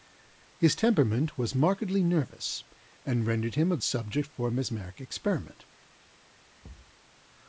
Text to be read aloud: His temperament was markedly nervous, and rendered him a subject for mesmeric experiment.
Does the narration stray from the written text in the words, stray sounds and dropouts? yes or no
yes